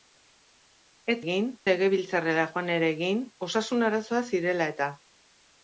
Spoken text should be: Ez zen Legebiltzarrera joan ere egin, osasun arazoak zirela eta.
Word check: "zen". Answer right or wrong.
wrong